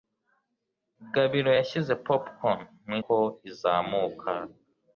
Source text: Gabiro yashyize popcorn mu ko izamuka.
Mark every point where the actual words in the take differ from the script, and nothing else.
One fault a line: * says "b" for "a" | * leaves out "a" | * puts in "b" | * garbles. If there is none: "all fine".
all fine